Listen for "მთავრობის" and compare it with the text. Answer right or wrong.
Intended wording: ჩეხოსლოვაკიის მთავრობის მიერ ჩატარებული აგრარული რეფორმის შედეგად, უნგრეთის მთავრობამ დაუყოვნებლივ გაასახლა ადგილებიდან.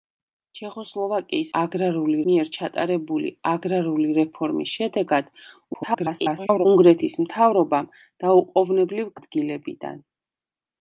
wrong